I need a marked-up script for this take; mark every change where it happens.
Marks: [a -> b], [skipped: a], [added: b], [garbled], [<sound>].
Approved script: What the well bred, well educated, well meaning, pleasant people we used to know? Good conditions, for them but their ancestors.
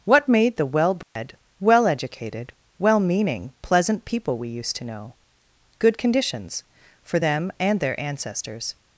What [added: made] the well bred, [dropout] well educated, well meaning, pleasant people we used to know? Good conditions, for them [but -> and] their ancestors.